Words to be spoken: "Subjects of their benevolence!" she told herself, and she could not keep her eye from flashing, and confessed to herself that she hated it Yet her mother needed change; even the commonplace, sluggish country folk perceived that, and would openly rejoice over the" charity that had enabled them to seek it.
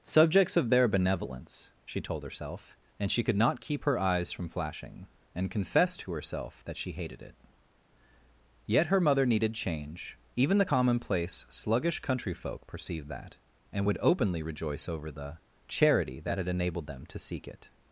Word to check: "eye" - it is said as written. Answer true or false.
false